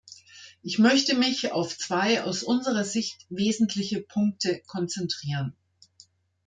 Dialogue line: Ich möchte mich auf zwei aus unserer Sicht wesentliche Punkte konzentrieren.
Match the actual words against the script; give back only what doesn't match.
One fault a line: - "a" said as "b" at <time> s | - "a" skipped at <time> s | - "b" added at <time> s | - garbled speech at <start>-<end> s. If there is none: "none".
none